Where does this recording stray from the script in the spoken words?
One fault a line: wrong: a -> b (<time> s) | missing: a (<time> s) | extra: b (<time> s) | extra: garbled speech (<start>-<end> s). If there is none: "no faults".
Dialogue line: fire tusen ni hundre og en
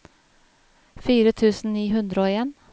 no faults